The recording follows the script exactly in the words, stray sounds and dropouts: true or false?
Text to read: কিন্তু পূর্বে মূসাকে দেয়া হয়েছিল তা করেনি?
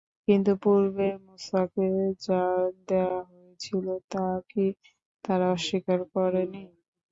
false